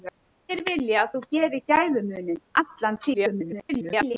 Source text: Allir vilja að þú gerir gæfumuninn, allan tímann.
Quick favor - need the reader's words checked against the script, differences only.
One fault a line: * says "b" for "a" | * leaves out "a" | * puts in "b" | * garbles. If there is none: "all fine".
* garbles